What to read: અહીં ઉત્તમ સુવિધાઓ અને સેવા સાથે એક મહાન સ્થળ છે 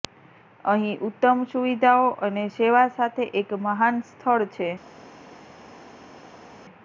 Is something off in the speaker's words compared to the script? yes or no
no